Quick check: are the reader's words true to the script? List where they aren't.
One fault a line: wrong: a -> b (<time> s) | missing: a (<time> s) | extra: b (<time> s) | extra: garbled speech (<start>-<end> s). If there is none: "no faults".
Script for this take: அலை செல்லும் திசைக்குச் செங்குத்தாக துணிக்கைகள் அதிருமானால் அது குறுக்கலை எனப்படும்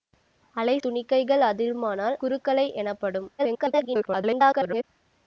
missing: செல்லும் திசைக்குச் செங்குத்தாக (0.8 s)
missing: அது (2.2 s)
extra: garbled speech (3.4-4.8 s)